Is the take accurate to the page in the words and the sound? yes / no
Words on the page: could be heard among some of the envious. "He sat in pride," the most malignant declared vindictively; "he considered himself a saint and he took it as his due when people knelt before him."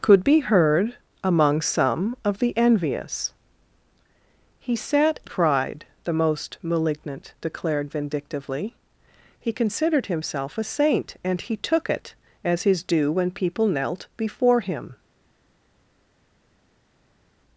no